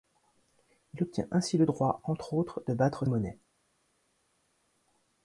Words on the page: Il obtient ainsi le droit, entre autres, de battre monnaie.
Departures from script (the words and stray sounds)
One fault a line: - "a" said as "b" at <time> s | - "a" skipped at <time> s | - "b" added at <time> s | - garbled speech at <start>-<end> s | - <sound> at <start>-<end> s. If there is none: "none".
none